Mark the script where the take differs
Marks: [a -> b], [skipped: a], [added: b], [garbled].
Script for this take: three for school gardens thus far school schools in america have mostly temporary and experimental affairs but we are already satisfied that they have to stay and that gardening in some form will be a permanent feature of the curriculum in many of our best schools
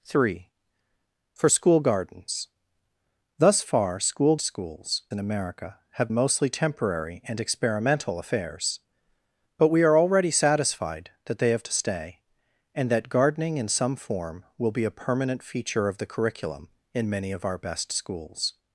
three for school gardens thus far school schools in america have mostly temporary and experimental affairs but we are already satisfied that they have to stay and that gardening in some form will be a permanent feature of the curriculum in many of our best schools